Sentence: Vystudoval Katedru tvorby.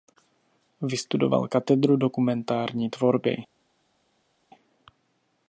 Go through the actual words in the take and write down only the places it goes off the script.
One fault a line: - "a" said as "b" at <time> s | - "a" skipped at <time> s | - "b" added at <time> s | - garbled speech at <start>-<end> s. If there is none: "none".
- "dokumentární" added at 2.0 s